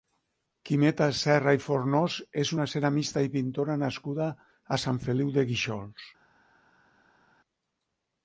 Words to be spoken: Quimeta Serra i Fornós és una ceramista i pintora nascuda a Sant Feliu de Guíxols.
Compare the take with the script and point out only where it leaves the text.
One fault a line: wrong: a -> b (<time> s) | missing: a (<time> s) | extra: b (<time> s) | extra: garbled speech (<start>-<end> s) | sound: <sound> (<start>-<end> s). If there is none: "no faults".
no faults